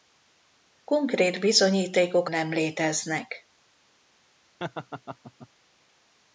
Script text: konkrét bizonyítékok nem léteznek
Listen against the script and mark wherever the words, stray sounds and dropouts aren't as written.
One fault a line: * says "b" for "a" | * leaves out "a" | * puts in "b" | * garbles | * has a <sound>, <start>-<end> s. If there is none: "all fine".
* has a laugh, 4.6-5.5 s